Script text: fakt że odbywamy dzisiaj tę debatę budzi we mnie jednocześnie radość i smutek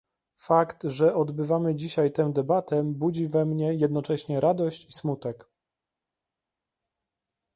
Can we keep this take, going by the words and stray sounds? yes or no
yes